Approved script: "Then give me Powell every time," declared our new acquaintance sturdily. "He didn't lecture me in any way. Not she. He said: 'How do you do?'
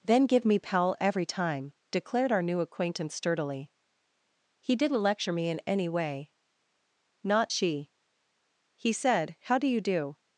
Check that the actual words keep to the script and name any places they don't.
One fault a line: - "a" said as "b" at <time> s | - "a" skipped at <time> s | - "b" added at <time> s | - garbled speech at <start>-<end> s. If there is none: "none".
none